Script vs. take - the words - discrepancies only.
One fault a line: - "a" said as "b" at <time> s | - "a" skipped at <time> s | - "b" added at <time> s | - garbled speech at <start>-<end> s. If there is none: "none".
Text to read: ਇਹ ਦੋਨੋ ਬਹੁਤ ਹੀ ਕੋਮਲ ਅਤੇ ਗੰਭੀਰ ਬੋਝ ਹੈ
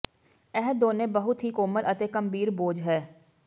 none